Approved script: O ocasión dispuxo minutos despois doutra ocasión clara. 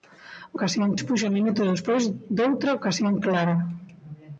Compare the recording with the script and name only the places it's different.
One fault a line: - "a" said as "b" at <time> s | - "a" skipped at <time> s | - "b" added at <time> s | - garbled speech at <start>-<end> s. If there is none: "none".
none